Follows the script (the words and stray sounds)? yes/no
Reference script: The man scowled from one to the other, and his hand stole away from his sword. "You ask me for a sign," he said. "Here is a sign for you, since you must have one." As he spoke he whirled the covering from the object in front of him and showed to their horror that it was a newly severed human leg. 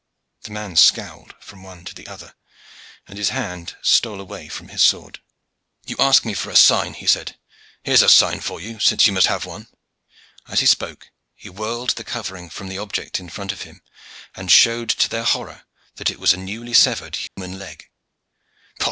no